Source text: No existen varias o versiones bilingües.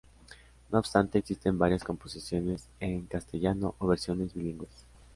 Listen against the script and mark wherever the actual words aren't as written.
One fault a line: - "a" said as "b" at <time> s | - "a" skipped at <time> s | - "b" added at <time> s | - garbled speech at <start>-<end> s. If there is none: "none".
- "obstante" added at 0.8 s
- "composiciones en castellano" added at 1.8 s